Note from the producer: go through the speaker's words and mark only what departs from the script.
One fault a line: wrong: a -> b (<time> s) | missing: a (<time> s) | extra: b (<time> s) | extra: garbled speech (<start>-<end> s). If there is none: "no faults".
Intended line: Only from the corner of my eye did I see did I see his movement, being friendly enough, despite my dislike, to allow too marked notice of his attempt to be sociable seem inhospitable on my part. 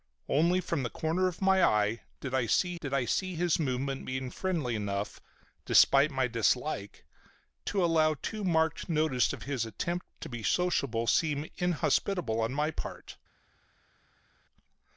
no faults